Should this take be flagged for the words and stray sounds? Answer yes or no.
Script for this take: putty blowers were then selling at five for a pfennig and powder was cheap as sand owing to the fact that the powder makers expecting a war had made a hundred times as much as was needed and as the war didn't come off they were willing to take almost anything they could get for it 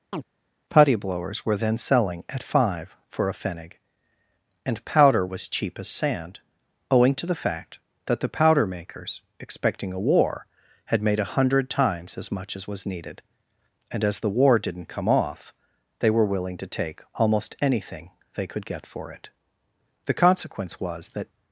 yes